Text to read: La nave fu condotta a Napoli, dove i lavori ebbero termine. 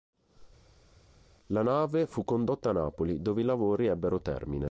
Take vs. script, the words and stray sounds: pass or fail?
pass